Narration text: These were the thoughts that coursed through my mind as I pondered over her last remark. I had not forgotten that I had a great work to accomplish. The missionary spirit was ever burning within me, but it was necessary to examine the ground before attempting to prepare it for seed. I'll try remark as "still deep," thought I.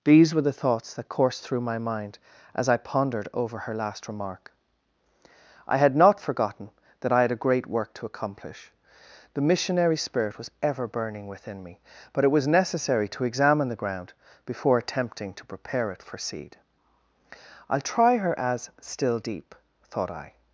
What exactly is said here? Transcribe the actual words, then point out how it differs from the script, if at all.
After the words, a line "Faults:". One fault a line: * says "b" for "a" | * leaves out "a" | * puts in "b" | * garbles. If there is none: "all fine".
These were the thoughts that coursed through my mind as I pondered over her last remark. I had not forgotten that I had a great work to accomplish. The missionary spirit was ever burning within me, but it was necessary to examine the ground before attempting to prepare it for seed. I'll try her as "still deep," thought I.
Faults:
* says "her" for "remark"